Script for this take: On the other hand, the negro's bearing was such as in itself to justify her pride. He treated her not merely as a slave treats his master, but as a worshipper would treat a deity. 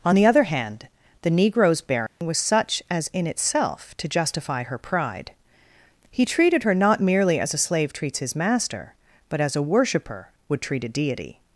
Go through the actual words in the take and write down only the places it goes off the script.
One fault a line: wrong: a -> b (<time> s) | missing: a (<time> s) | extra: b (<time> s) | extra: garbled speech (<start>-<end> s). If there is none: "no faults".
no faults